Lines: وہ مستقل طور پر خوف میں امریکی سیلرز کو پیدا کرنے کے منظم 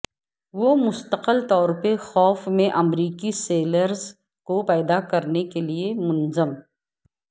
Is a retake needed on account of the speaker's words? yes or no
yes